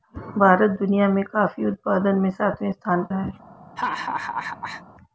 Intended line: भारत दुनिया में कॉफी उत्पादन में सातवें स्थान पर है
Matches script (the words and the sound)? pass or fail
fail